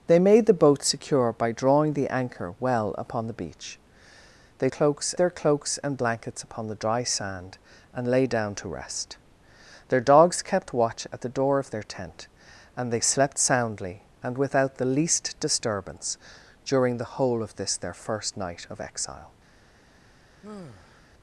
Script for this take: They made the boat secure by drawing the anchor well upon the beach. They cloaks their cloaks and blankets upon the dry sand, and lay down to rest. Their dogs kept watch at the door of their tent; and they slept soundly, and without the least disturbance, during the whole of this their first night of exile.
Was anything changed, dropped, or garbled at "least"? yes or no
no